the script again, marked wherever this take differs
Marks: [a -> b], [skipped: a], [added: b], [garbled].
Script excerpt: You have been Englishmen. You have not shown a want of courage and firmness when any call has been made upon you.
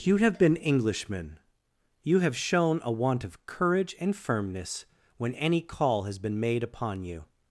You have been Englishmen. You have [skipped: not] shown a want of courage and firmness when any call has been made upon you.